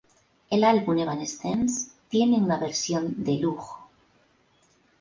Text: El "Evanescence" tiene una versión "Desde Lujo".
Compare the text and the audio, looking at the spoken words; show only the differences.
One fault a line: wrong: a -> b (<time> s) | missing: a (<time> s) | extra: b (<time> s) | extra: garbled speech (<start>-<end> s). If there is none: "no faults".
extra: álbum (0.6 s)
wrong: Desde -> De (3.2 s)